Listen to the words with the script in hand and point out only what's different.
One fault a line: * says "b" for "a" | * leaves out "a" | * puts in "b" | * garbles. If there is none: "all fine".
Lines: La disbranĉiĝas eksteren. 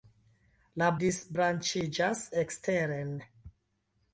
all fine